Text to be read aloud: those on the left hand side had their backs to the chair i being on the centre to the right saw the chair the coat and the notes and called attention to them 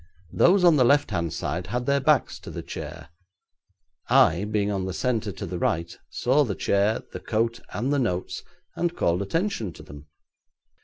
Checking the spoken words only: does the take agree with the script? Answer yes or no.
yes